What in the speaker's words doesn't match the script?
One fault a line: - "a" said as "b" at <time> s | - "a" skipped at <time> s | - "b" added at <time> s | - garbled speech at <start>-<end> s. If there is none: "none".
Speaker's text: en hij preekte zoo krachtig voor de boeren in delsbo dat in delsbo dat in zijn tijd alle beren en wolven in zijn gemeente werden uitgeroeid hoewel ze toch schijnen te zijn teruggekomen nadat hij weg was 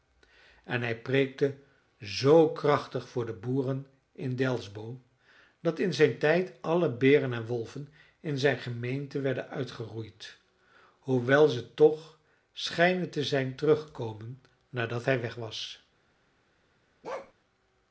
- "delsbo dat in" skipped at 5.9 s